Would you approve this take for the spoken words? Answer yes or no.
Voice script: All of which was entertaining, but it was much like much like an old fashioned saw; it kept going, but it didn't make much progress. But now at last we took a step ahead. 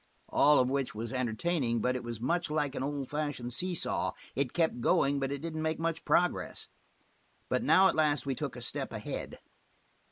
no